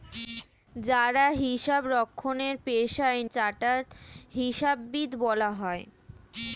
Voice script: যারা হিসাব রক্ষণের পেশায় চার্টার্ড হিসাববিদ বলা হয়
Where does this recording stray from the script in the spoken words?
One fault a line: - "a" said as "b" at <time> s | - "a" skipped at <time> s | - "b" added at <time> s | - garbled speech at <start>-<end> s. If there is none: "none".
none